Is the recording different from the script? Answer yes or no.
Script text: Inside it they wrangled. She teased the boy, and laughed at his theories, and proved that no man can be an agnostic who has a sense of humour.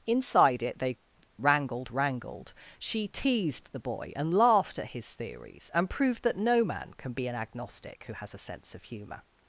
yes